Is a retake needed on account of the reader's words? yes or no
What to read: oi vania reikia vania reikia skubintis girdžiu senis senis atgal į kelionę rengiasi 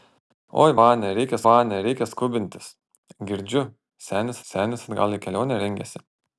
no